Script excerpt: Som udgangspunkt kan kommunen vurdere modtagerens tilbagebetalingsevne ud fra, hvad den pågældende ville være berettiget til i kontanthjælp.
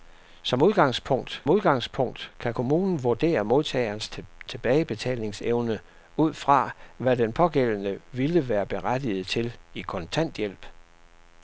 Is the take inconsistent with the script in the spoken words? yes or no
yes